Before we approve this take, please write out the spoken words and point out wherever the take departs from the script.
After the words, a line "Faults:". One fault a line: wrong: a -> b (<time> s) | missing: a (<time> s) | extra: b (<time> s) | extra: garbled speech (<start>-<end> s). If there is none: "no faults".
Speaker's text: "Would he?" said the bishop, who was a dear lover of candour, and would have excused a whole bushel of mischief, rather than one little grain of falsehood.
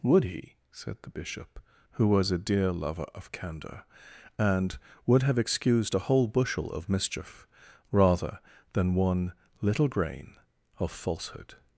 "Would he?" said the bishop, who was a dear lover of candour, and would have excused a whole bushel of mischief, rather than one little grain of falsehood.
Faults:
no faults